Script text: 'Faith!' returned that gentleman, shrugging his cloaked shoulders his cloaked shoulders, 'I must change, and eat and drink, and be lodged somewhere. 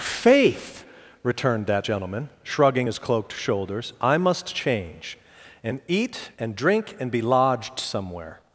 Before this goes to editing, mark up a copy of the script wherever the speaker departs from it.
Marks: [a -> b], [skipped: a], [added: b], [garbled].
'Faith!' returned that gentleman, shrugging his cloaked shoulders [skipped: his cloaked shoulders,] 'I must change, and eat and drink, and be lodged somewhere.